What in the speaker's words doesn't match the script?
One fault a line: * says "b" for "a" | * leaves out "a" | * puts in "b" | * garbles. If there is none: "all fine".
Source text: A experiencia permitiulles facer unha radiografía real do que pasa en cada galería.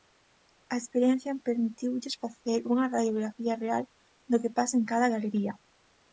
all fine